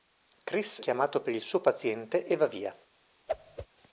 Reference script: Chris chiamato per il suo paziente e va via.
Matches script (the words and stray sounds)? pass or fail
fail